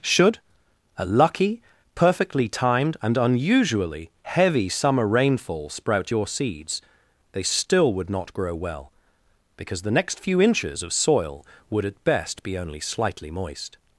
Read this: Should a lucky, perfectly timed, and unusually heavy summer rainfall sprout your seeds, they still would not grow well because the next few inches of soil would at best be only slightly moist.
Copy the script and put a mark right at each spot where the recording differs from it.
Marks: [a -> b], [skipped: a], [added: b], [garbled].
Should a lucky, perfectly timed, and unusually heavy summer rainfall sprout your seeds, they still would not grow well because the next few inches of soil would at best be only slightly moist.